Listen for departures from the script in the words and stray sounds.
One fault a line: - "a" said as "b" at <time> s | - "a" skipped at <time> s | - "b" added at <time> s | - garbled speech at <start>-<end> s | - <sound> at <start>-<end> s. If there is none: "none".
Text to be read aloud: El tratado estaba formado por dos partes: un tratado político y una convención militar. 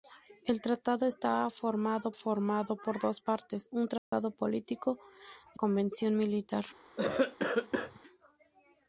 - "formado" added at 2.1 s
- dropout at 4.0-4.1 s
- "una" skipped at 5.6 s
- cough at 7.0-8.0 s